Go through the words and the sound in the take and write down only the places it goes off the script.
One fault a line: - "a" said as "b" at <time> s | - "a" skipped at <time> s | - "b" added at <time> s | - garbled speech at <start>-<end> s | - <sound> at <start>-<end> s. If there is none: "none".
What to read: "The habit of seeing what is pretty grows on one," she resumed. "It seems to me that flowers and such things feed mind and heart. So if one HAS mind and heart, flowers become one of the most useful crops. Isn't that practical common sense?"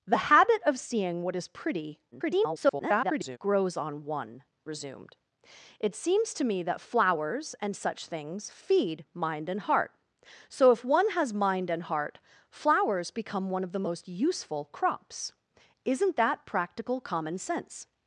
- garbled speech at 2.1-3.4 s
- "she" skipped at 4.4 s